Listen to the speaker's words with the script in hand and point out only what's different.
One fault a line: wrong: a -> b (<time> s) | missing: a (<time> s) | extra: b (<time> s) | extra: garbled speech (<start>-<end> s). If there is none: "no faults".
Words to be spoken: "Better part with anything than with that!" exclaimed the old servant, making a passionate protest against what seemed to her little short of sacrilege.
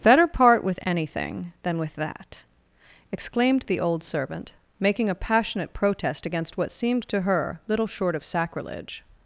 no faults